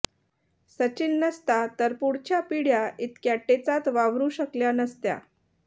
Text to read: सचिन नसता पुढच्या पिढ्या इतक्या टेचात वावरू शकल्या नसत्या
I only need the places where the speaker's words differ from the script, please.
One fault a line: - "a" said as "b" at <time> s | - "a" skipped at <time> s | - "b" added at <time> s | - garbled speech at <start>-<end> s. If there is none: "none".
- "तर" added at 1.8 s